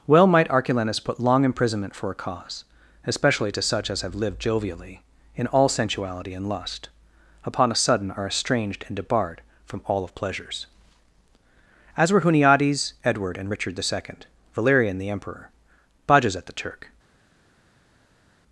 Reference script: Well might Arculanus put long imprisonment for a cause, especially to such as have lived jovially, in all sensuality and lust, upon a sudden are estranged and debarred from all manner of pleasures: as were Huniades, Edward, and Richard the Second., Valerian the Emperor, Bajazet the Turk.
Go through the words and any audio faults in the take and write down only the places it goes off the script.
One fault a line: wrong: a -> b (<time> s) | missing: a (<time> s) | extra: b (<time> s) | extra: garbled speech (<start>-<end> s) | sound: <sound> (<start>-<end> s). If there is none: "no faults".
missing: manner (10.0 s)